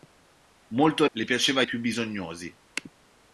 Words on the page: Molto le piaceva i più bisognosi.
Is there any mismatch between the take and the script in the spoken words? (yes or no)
no